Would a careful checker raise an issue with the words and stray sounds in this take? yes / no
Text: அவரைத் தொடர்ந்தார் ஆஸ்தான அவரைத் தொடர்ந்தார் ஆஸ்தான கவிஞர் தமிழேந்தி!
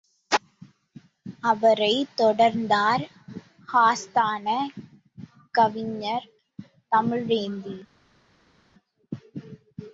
yes